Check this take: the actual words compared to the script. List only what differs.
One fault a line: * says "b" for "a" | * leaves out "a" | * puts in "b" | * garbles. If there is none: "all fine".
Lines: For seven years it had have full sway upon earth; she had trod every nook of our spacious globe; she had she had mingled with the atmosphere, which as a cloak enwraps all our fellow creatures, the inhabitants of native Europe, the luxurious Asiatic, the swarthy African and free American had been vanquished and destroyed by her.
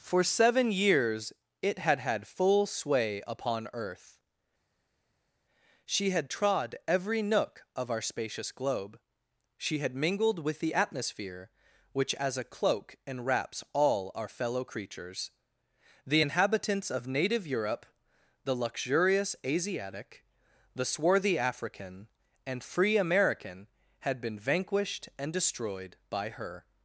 * says "had" for "have"
* leaves out "she had"